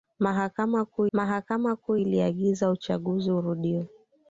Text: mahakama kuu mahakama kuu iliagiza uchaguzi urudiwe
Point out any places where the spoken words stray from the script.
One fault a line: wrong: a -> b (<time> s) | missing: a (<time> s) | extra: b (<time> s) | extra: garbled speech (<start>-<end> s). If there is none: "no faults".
no faults